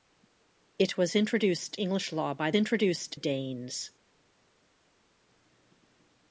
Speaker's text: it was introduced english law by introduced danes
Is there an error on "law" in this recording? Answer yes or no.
no